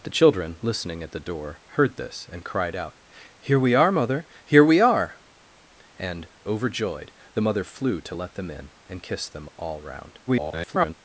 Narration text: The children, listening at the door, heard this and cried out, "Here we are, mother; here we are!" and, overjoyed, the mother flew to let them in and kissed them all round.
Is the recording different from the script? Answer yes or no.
yes